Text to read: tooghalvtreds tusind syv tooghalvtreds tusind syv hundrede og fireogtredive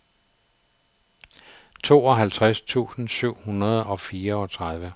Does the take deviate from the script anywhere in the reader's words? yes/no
yes